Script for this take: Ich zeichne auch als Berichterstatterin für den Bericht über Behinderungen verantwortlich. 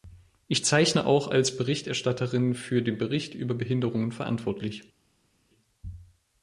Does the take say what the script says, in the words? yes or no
yes